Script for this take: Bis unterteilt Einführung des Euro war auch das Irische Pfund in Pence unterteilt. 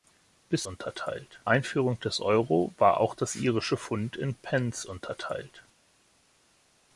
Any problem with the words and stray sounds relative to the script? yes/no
no